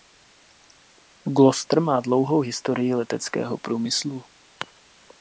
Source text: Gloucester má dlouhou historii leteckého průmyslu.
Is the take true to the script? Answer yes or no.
yes